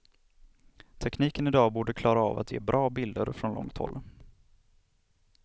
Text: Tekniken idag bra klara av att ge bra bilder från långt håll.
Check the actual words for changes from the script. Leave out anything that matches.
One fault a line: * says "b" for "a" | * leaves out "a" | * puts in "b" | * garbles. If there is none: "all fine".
* says "borde" for "bra"